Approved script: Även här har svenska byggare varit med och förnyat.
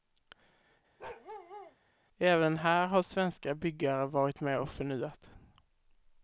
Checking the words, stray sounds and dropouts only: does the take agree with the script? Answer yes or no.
no